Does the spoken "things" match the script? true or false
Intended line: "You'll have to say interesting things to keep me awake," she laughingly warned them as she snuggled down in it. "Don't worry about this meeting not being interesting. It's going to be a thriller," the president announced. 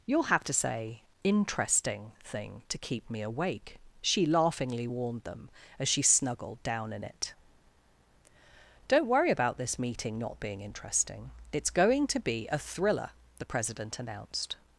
false